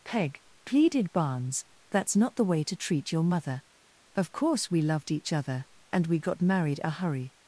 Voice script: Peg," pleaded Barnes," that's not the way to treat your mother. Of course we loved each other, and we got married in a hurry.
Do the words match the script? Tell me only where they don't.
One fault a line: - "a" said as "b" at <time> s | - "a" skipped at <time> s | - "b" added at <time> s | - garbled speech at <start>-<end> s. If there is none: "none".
- "in" skipped at 6.8 s